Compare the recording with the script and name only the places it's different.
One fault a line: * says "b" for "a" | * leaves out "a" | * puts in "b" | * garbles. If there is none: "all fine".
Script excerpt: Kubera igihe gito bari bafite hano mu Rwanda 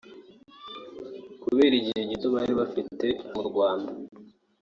* leaves out "hano"